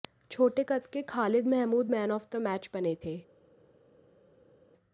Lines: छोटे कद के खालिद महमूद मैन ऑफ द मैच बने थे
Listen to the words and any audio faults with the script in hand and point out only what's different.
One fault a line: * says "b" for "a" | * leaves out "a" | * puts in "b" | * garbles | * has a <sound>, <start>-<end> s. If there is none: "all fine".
all fine